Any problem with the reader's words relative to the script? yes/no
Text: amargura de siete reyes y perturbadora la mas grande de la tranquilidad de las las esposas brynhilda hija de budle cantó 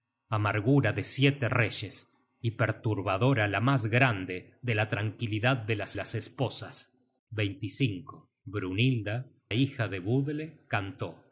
no